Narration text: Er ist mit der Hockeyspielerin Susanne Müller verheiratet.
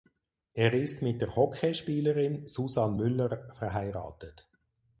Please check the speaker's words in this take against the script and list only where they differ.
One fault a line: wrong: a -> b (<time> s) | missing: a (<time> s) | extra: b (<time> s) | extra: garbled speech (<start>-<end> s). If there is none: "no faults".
no faults